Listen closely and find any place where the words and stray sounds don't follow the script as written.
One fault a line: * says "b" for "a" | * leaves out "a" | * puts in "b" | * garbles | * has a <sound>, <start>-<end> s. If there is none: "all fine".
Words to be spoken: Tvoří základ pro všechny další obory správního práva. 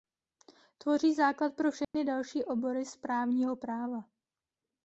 * has a dropout, 1.8-1.9 s